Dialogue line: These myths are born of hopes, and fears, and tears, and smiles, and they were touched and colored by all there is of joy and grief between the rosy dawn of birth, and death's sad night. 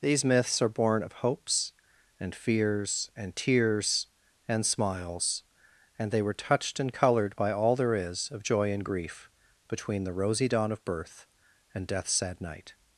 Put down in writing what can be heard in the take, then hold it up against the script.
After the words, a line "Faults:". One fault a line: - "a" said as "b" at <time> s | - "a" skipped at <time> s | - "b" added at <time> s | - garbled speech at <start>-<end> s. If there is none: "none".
These myths are born of hopes, and fears, and tears, and smiles, and they were touched and colored by all there is of joy and grief between the rosy dawn of birth, and death's sad night.
Faults:
none